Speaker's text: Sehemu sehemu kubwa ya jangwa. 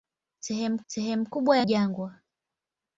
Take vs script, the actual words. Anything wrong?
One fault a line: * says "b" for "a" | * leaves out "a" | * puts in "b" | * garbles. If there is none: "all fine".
all fine